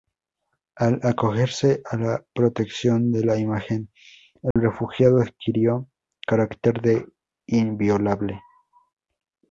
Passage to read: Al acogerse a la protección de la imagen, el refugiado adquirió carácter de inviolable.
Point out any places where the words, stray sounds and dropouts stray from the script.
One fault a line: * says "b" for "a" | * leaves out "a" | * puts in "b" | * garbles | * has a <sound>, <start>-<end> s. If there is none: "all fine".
* has a dropout, 4.5-4.6 s